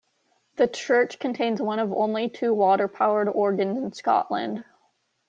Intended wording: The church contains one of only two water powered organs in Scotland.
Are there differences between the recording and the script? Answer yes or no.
no